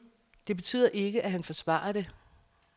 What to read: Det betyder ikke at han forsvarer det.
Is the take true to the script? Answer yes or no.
yes